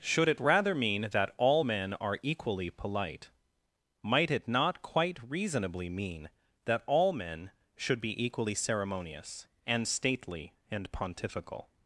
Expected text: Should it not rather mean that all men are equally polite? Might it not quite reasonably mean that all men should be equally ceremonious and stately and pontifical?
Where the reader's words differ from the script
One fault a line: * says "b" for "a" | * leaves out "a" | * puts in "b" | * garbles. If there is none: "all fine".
* leaves out "not"